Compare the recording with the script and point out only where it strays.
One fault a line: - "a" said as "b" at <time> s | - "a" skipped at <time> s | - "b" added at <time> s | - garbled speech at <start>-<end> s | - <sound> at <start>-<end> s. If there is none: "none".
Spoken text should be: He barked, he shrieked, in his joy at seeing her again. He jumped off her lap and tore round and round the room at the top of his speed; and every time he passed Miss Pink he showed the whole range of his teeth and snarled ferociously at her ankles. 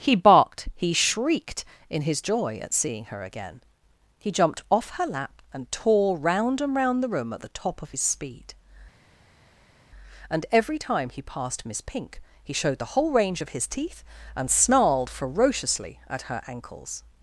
none